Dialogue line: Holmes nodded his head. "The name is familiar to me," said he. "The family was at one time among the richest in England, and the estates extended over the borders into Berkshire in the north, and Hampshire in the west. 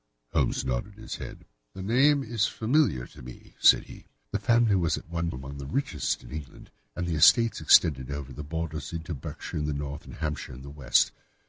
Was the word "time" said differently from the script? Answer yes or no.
yes